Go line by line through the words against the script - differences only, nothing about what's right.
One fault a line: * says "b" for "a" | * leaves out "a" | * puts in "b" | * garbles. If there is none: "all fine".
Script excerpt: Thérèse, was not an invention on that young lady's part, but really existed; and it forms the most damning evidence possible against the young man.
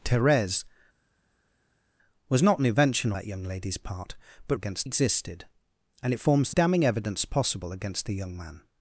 * leaves out "on"
* says "against" for "really"
* leaves out "most"